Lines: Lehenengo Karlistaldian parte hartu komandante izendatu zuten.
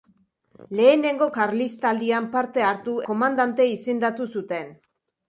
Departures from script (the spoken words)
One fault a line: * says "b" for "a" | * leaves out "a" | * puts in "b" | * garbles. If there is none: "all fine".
all fine